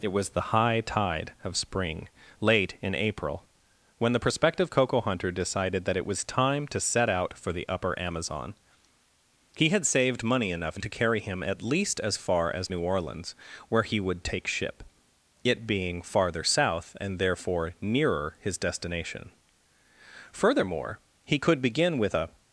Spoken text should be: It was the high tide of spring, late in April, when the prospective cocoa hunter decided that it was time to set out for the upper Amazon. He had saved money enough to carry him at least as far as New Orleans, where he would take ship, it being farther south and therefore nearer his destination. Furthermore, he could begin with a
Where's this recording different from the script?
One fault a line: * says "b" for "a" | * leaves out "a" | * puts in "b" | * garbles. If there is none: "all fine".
all fine